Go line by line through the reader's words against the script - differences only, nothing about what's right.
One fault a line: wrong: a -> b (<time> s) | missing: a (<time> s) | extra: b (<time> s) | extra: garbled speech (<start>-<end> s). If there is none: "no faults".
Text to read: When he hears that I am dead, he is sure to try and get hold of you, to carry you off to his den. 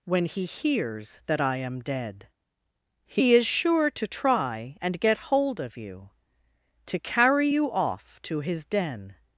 no faults